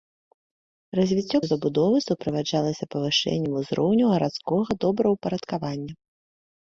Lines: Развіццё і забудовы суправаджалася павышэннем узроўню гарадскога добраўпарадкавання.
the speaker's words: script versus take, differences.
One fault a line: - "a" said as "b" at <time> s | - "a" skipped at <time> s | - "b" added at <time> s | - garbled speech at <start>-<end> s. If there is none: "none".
none